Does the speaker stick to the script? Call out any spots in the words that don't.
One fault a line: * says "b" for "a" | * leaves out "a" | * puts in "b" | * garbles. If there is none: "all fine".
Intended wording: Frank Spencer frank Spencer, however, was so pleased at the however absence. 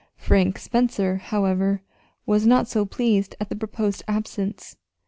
* leaves out "frank Spencer"
* puts in "not"
* says "proposed" for "however"